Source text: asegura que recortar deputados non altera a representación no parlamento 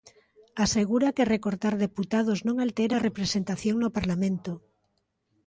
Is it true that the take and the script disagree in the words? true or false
false